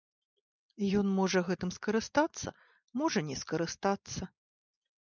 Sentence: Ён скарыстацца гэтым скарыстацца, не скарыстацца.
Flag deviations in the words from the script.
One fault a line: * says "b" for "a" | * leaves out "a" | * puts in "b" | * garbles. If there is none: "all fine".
* says "можа" for "скарыстацца"
* puts in "можа"